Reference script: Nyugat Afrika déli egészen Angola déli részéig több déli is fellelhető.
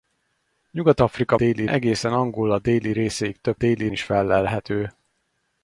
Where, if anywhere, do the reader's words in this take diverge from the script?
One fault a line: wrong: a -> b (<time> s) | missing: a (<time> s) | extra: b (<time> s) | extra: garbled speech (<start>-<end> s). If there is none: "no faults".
no faults